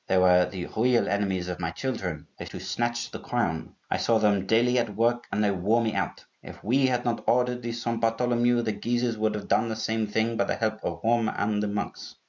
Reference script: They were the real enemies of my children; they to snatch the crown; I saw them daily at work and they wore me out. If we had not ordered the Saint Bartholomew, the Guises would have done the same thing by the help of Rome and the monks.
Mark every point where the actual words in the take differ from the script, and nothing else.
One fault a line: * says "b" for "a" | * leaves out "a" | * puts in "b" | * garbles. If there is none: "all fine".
all fine